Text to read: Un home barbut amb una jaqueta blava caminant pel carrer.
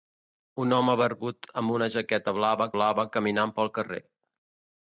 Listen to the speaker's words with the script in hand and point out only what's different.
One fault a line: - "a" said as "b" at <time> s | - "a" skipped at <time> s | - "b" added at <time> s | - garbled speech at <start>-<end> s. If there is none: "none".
- "blava" added at 2.8 s